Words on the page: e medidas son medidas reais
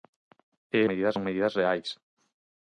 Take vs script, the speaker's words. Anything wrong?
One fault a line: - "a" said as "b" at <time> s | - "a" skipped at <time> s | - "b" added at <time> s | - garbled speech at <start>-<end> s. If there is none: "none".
none